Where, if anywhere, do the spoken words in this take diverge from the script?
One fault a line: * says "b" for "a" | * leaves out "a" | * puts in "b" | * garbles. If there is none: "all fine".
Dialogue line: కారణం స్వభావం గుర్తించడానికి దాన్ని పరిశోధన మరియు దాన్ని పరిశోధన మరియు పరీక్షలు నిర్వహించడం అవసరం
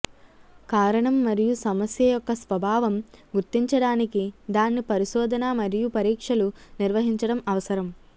* says "మరియు సమస్య యొక్క స్వభావం గుర్తించడానికి" for "స్వభావం గుర్తించడానికి దాన్ని పరిశోధన మరియు"